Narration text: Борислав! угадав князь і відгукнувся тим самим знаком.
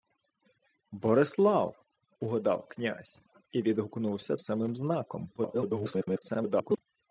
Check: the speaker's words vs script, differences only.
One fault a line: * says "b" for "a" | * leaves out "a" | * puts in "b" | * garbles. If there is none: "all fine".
* leaves out "тим"
* garbles